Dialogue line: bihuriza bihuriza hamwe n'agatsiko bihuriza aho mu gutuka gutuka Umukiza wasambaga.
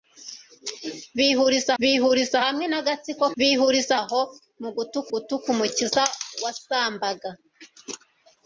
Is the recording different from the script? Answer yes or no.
no